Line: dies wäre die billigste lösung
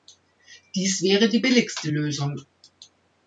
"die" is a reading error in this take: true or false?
false